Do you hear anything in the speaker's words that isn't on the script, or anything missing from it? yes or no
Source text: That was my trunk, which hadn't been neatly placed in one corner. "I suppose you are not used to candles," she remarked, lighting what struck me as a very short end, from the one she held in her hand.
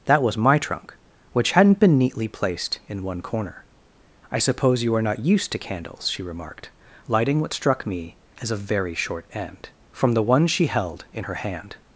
no